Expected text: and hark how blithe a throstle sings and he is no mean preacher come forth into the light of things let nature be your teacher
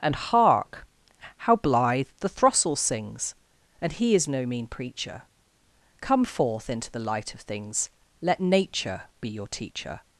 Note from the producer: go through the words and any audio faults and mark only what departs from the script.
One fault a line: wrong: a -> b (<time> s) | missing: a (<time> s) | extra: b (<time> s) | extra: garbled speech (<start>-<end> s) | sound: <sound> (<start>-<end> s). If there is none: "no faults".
wrong: a -> the (2.2 s)